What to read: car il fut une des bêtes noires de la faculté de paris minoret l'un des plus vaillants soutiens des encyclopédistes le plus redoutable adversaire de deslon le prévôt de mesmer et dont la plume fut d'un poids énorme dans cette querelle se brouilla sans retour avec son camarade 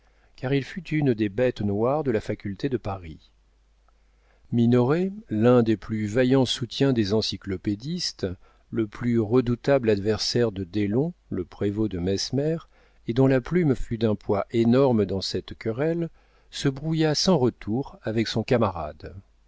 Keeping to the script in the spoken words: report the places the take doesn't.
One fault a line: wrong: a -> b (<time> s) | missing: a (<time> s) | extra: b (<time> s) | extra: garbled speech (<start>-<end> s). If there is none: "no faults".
no faults